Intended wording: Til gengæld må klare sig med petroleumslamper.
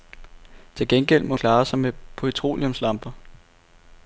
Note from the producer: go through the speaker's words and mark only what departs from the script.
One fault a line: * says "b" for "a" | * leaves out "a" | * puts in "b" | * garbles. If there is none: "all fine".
all fine